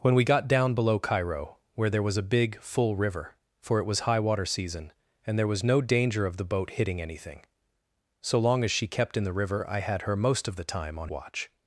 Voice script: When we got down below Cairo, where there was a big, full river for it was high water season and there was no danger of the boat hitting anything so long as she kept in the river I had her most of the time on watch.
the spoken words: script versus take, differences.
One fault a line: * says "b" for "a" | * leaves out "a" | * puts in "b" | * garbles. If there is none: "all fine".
all fine